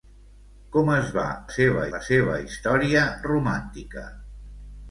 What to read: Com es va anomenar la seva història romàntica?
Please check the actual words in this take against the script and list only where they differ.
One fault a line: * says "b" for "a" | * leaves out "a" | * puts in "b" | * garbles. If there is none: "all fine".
* says "seva" for "anomenar"